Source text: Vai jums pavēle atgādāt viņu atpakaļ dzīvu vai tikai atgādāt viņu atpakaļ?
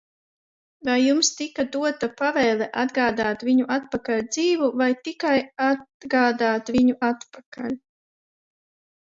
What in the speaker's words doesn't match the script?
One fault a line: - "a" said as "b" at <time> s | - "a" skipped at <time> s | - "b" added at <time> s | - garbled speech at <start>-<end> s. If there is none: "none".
- "tika dota" added at 1.4 s